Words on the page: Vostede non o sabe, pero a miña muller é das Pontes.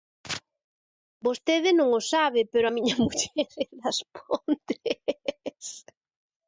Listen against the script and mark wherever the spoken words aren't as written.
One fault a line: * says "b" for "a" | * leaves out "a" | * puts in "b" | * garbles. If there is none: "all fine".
all fine